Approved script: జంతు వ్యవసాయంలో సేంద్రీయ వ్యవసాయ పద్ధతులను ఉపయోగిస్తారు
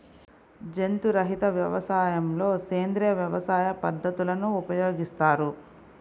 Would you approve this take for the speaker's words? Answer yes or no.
no